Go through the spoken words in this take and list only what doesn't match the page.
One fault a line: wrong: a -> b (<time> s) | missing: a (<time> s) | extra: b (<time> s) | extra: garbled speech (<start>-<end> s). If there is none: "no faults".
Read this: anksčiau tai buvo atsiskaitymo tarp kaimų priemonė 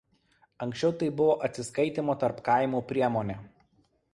no faults